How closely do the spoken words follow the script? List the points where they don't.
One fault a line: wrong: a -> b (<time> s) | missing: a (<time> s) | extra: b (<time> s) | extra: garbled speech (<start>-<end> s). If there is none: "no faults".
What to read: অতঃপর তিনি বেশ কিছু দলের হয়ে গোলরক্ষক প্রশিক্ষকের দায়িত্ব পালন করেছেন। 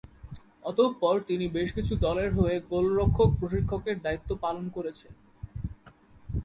no faults